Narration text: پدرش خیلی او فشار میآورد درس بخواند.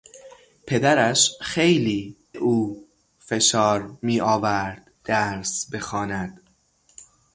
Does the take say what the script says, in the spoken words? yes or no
yes